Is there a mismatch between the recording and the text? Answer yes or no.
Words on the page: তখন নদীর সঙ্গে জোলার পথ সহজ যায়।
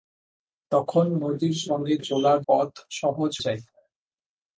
no